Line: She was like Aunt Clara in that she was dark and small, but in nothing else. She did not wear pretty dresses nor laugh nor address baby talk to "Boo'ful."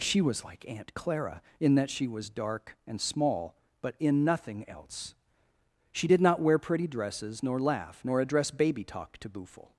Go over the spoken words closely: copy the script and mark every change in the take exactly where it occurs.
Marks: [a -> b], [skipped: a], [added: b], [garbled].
She was like Aunt Clara in that she was dark and small, but in nothing else. She did not wear pretty dresses nor laugh nor address baby talk to "Boo'ful."